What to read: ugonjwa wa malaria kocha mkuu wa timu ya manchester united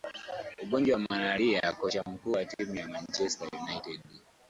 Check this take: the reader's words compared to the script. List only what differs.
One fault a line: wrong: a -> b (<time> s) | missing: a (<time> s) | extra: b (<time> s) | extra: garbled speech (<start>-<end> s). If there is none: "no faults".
no faults